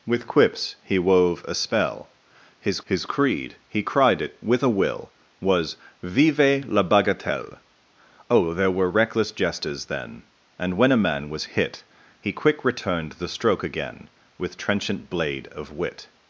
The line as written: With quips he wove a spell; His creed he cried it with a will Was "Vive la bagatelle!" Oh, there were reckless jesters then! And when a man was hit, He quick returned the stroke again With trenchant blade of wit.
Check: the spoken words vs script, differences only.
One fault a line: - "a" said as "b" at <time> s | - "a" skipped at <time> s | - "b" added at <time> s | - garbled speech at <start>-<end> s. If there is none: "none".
- "His" added at 2.8 s